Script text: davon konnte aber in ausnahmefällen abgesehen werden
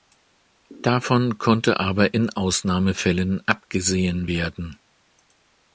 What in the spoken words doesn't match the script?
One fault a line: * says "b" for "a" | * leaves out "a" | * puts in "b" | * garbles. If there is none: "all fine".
all fine